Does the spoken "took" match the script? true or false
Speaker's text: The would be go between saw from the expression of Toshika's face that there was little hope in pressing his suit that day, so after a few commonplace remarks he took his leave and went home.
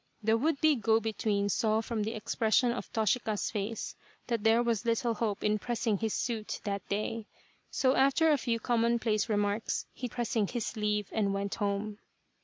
false